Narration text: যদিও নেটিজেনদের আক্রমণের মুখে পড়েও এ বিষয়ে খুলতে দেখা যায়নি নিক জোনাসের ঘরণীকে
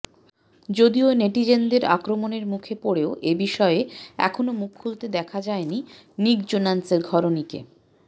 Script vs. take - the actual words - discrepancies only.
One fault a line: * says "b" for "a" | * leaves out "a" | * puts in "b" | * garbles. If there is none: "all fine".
* puts in "এখনও মুখ"